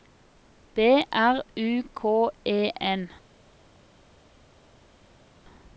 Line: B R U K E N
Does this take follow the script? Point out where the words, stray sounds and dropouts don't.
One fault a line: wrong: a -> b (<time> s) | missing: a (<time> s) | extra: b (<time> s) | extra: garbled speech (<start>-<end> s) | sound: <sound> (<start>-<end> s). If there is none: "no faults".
no faults